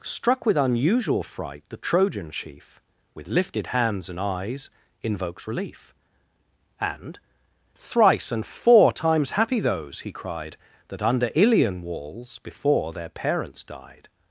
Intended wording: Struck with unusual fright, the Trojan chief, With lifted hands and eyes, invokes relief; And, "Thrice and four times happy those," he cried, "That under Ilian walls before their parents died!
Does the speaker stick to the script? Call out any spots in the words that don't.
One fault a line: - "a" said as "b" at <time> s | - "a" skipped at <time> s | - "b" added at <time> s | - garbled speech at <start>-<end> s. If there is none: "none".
none